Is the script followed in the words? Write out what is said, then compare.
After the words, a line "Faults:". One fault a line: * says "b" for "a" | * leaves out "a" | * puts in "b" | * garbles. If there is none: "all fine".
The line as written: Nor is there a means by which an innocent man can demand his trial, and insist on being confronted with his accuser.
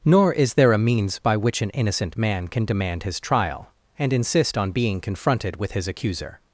Nor is there a means by which an innocent man can demand his trial, and insist on being confronted with his accuser.
Faults:
all fine